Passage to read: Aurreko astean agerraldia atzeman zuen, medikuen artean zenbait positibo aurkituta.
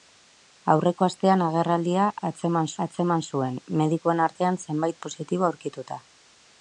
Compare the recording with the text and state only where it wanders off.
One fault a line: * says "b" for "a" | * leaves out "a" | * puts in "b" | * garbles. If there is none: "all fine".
* puts in "atzeman"